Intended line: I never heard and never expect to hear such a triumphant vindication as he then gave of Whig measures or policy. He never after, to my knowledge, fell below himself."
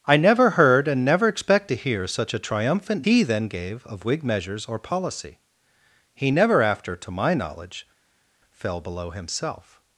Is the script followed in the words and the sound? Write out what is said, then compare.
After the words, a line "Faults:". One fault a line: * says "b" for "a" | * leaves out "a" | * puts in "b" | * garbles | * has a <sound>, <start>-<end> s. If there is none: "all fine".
I never heard and never expect to hear such a triumphant he then gave of Whig measures or policy. He never after, to my knowledge, fell below himself."
Faults:
* leaves out "vindication as"